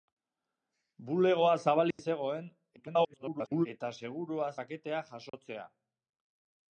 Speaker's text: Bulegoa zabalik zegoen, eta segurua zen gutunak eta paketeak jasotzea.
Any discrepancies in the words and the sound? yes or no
yes